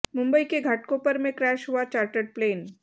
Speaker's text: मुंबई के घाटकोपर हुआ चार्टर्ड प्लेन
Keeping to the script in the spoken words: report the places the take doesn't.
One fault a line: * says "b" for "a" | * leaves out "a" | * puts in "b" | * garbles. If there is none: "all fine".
* puts in "में क्रैश"